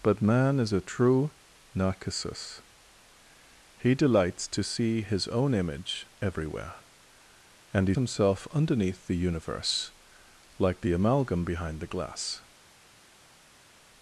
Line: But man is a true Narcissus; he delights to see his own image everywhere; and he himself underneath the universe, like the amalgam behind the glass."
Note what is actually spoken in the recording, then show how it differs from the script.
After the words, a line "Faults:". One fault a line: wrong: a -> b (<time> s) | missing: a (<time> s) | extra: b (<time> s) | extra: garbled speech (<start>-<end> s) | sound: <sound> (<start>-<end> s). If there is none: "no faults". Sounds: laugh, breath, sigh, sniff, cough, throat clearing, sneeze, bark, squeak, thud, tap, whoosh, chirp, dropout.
But man is a true Narcissus; he delights to see his own image everywhere; and he himself underneath the universe, like the amalgam behind the glass."
Faults:
no faults